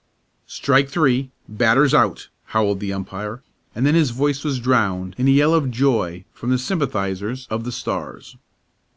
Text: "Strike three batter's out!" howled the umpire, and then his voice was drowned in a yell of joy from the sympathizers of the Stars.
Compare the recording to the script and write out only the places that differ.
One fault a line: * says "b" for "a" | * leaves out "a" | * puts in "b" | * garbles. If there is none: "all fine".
all fine